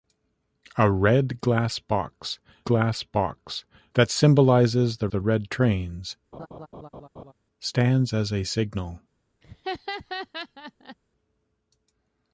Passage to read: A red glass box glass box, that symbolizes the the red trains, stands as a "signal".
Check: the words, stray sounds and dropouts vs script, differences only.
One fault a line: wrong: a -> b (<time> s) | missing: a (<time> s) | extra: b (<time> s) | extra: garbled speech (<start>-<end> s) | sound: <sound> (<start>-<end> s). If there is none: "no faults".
sound: laugh (6.3-7.3 s)
sound: laugh (9.4-11.0 s)